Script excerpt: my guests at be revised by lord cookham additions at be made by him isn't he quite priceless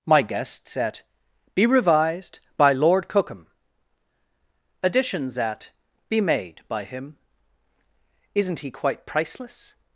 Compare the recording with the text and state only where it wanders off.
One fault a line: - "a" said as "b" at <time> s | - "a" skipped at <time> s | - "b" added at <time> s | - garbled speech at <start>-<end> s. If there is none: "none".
none